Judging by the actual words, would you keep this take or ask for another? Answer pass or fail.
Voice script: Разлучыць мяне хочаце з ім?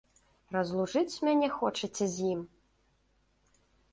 pass